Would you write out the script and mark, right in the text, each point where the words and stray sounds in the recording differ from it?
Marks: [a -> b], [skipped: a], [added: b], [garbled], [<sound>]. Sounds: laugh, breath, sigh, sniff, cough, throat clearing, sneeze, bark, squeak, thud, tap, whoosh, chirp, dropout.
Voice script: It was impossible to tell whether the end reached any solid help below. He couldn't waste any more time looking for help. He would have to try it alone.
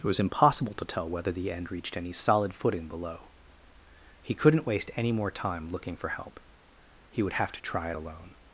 It was impossible to tell whether the end reached any solid [help -> footing] below. He couldn't waste any more time looking for help. He would have to try it alone.